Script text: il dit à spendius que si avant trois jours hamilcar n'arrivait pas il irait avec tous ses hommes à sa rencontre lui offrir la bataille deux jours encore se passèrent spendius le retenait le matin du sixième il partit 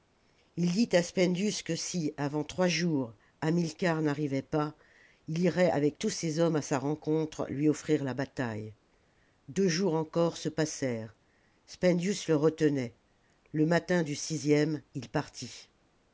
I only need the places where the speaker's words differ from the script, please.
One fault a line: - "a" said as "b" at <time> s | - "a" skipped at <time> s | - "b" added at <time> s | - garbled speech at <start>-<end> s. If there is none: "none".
none